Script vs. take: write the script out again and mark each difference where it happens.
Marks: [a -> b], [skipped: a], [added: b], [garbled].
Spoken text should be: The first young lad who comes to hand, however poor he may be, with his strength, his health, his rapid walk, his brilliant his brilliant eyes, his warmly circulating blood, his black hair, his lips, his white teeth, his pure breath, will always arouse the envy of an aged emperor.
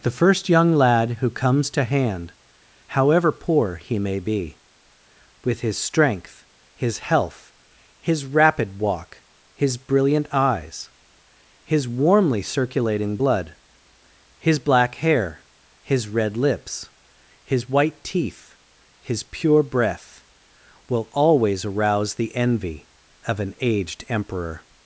The first young lad who comes to hand, however poor he may be, with his strength, his health, his rapid walk, his brilliant [skipped: his brilliant] eyes, his warmly circulating blood, his black hair, his [added: red] lips, his white teeth, his pure breath, will always arouse the envy of an aged emperor.